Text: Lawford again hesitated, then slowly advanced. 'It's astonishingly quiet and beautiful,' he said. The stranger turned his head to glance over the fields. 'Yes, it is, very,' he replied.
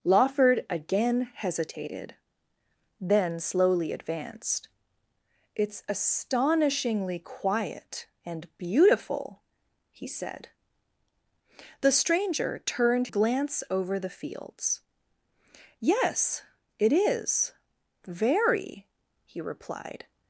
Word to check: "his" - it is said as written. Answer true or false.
false